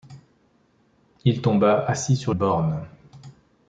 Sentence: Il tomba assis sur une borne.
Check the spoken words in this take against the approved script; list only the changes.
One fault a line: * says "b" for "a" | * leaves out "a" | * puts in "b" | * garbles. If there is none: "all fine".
* leaves out "une"